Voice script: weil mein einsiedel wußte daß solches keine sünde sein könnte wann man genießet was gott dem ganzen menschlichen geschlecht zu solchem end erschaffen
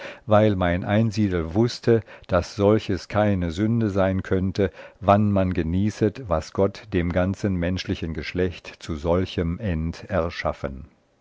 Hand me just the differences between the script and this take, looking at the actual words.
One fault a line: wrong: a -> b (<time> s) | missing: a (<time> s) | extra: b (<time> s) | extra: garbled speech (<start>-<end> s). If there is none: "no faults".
no faults